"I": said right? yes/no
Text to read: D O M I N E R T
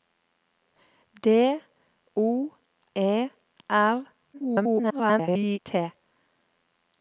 no